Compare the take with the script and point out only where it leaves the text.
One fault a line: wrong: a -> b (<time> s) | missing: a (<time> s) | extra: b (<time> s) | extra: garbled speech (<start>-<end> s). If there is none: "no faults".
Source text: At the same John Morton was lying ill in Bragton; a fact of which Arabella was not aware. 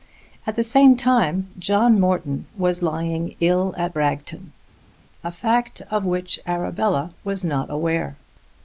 extra: time (0.9 s)
wrong: in -> at (3.8 s)